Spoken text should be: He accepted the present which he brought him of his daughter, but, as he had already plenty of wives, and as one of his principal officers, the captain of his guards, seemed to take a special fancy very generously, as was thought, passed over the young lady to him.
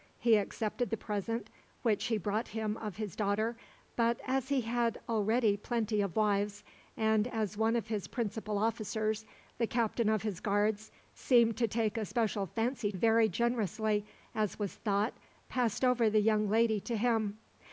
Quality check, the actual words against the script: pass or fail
pass